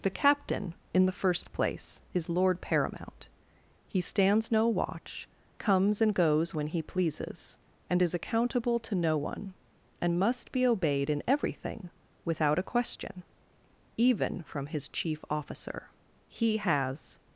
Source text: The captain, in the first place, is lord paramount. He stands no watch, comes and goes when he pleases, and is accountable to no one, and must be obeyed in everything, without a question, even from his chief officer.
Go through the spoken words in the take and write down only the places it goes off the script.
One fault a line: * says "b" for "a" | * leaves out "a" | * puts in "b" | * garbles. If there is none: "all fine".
* puts in "He has"